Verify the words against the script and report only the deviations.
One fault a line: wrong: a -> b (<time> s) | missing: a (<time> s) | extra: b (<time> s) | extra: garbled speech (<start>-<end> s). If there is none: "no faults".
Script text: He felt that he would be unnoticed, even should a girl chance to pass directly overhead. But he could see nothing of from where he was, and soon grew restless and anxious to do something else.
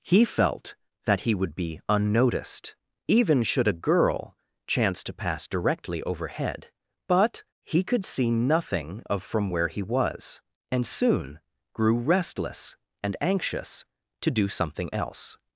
no faults